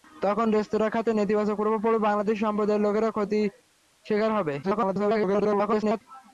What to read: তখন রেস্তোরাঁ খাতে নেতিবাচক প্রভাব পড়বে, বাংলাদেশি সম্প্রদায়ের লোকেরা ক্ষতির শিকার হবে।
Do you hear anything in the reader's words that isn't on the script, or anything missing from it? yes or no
yes